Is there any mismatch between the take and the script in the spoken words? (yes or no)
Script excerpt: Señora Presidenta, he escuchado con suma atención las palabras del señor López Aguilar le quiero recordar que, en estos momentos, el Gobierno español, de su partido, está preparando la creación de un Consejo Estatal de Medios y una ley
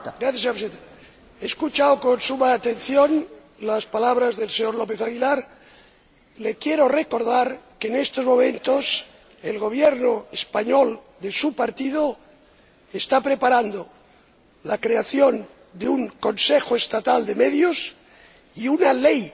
no